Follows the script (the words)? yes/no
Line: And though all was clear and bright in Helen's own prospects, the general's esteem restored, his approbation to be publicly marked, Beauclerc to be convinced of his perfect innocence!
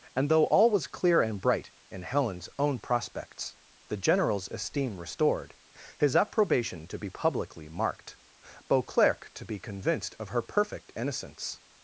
no